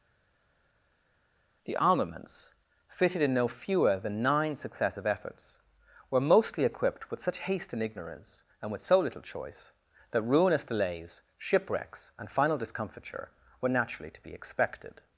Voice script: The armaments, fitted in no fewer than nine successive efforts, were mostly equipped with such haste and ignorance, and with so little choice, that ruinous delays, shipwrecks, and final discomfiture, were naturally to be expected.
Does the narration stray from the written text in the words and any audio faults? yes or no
no